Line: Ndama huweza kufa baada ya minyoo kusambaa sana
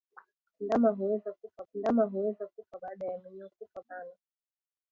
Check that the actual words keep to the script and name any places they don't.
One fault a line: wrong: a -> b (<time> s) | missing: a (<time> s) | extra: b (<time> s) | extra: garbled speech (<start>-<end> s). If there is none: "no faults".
extra: ndama huweza kufa (1.7 s)
wrong: kusambaa -> kufa (3.5 s)